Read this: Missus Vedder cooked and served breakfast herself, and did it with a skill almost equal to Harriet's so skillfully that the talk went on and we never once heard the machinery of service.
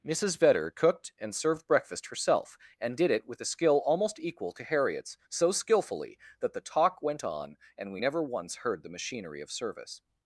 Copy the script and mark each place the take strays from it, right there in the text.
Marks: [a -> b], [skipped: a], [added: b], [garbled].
Missus Vedder cooked and served breakfast herself, and did it with a skill almost equal to Harriet's so skillfully that the talk went on and we never once heard the machinery of service.